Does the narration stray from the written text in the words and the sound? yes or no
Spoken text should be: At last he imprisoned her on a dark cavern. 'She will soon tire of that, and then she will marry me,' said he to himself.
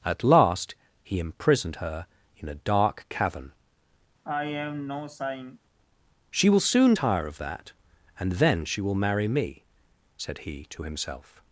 yes